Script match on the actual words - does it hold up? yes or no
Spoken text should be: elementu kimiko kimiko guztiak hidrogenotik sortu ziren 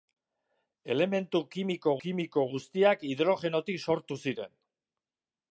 yes